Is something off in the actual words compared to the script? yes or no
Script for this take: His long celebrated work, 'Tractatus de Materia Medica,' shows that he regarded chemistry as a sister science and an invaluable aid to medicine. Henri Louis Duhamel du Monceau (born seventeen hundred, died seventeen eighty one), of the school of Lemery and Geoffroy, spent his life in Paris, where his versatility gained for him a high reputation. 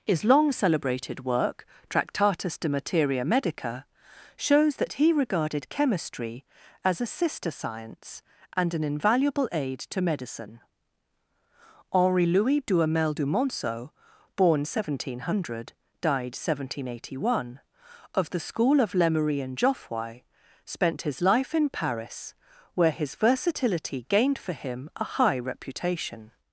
no